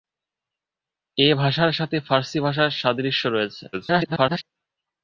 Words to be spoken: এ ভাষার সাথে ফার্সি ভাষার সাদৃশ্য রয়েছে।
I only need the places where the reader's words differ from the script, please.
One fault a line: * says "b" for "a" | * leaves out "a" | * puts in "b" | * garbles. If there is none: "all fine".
* garbles